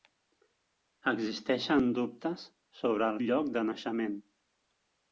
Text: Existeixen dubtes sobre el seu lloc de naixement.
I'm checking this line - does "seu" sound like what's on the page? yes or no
no